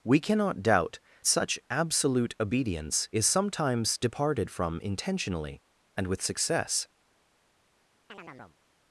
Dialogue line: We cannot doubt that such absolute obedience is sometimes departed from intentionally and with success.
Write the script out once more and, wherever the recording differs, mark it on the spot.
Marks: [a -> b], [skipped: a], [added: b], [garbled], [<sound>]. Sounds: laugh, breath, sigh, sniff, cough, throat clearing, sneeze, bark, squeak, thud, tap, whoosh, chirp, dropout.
We cannot doubt [skipped: that] such absolute obedience is sometimes departed from intentionally and with success. [chirp]